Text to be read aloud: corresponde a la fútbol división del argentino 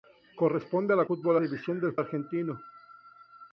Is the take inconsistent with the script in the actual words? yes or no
no